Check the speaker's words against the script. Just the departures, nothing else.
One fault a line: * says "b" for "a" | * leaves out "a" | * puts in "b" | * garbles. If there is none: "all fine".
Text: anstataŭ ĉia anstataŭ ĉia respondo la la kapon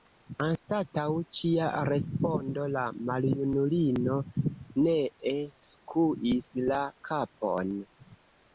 * says "respondo la maljunulino nee skuis" for "anstataŭ ĉia respondo la"